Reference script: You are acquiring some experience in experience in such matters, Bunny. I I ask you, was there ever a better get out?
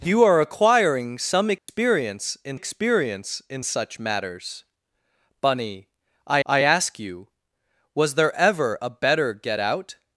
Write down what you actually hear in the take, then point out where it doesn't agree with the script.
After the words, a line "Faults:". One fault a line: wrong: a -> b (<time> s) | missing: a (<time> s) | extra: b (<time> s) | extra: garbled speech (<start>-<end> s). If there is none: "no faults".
You are acquiring some experience in experience in such matters, Bunny. I I ask you, was there ever a better get out?
Faults:
no faults